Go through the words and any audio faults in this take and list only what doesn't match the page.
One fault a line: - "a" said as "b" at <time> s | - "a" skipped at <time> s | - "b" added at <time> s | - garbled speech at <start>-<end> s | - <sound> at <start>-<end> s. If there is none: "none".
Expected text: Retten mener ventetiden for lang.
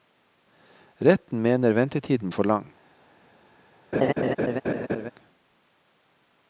- laugh at 3.9-5.1 s